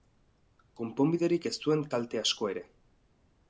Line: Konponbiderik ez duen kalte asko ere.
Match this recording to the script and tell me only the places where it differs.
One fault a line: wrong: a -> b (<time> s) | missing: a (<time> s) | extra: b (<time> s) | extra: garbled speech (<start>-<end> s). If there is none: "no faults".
no faults